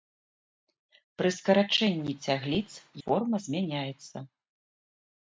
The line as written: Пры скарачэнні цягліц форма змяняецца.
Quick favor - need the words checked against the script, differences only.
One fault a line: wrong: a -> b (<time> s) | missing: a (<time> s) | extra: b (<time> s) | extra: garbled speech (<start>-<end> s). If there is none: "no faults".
no faults